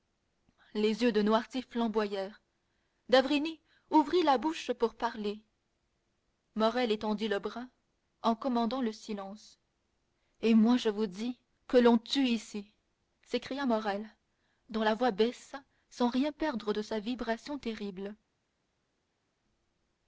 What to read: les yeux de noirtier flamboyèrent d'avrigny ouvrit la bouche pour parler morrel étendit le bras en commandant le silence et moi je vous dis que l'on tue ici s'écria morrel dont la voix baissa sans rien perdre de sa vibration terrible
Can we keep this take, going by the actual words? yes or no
yes